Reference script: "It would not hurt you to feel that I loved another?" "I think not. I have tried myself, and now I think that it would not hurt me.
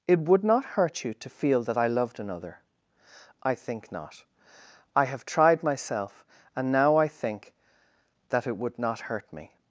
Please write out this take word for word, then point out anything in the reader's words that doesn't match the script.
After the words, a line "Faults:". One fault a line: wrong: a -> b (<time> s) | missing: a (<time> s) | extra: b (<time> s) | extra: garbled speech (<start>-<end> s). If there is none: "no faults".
"It would not hurt you to feel that I loved another?" "I think not. I have tried myself, and now I think that it would not hurt me.
Faults:
no faults